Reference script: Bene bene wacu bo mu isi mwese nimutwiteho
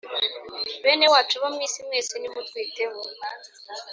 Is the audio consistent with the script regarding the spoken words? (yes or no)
no